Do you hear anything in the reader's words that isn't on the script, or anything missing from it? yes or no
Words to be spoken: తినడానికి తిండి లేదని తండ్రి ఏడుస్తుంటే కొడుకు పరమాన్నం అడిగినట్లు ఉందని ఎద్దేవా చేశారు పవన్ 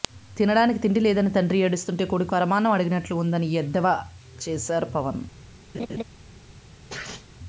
no